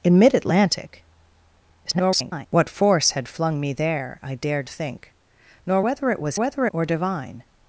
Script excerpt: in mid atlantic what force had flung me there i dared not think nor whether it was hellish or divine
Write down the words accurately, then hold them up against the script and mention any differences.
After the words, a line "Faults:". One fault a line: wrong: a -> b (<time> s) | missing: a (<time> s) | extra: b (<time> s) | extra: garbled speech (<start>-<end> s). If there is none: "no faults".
in mid atlantic [garbled] what force had flung me there i dared think nor whether it was whether or divine
Faults:
extra: garbled speech (1.8-2.5 s)
missing: not (4.7 s)
wrong: hellish -> whether (6.4 s)